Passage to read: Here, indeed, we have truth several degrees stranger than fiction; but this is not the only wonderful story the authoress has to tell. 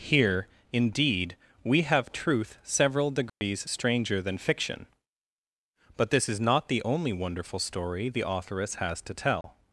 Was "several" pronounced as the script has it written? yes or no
yes